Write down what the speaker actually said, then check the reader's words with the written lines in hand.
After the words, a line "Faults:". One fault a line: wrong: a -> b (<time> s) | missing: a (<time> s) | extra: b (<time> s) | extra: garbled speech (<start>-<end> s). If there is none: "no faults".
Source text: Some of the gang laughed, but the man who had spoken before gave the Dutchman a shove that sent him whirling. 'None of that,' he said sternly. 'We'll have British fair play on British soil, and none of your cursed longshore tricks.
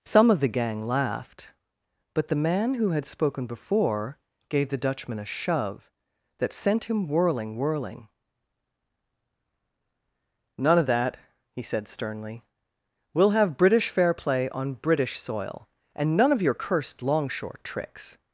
Some of the gang laughed, but the man who had spoken before gave the Dutchman a shove that sent him whirling whirling. 'None of that,' he said sternly. 'We'll have British fair play on British soil, and none of your cursed longshore tricks.
Faults:
extra: whirling (7.5 s)